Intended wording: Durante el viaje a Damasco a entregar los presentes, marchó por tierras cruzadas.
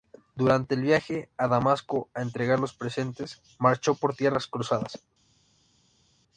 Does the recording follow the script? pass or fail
pass